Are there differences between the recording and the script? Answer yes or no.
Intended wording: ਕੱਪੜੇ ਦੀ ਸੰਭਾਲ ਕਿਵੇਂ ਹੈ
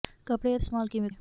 no